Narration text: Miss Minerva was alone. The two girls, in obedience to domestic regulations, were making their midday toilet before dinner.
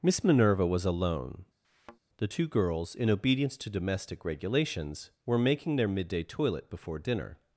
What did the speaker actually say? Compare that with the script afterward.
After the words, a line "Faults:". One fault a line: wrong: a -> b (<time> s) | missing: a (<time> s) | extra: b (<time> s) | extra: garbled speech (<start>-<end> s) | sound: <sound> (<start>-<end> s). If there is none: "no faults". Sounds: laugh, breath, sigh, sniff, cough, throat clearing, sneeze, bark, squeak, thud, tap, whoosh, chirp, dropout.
Miss Minerva was alone. The two girls, in obedience to domestic regulations, were making their midday toilet before dinner.
Faults:
sound: thud (1.6-2.0 s)